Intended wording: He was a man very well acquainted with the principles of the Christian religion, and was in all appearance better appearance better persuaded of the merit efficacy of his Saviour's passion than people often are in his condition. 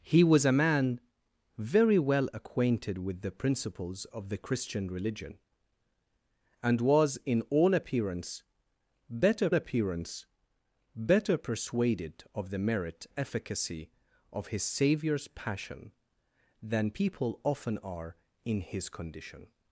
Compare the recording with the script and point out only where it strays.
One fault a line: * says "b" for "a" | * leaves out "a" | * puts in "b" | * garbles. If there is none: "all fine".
all fine